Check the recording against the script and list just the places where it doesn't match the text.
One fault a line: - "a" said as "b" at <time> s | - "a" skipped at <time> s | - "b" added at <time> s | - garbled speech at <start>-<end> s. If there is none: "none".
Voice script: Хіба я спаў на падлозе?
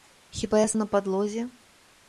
- "спаў" skipped at 0.7 s